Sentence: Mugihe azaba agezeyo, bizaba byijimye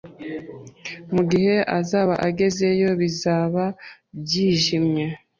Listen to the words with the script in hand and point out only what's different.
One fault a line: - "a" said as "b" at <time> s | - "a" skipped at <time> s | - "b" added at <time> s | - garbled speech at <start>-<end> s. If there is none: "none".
none